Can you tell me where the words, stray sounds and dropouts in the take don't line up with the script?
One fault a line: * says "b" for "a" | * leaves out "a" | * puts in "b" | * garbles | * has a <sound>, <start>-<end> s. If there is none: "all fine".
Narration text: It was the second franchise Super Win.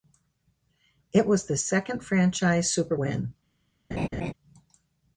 * has a laugh, 3.9-4.3 s